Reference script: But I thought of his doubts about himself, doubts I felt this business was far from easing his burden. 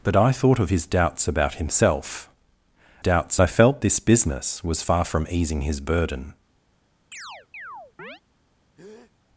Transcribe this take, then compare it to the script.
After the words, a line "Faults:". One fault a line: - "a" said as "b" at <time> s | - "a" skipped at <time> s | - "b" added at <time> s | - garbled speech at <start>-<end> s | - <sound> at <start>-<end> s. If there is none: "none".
But I thought of his doubts about himself, doubts I felt this business was far from easing his burden.
Faults:
- chirp at 7.1-8.2 s
- breath at 8.8-9.1 s